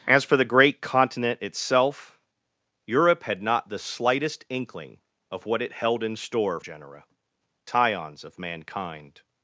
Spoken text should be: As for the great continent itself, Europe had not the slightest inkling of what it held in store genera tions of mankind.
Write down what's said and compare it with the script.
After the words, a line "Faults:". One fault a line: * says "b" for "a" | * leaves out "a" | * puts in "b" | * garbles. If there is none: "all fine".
As for the great continent itself, Europe had not the slightest inkling of what it held in store genera tions of mankind.
Faults:
all fine